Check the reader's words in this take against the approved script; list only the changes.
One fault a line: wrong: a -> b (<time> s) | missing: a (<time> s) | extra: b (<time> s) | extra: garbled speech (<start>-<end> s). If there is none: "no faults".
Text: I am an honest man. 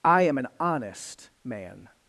no faults